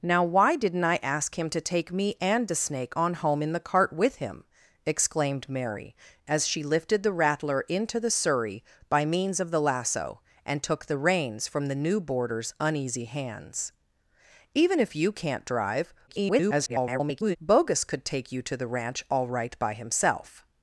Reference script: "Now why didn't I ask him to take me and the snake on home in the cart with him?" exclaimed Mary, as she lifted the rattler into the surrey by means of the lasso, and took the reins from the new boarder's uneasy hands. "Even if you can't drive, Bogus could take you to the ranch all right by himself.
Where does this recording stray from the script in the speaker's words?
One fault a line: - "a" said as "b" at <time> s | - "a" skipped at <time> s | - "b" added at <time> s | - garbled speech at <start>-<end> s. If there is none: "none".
- garbled speech at 16.1-17.4 s